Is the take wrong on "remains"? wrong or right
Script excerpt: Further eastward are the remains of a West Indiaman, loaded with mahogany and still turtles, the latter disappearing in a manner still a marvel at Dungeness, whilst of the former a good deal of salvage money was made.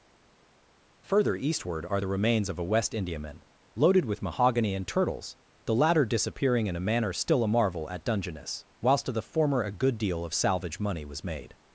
right